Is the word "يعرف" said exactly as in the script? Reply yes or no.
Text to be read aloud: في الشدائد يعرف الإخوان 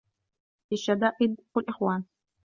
no